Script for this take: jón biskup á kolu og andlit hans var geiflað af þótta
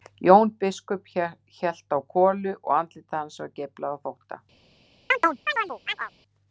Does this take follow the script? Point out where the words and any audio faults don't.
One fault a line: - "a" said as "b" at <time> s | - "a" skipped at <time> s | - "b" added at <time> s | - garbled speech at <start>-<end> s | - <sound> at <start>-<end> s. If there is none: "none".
- "hélt" added at 1.6 s
- chirp at 5.1-6.1 s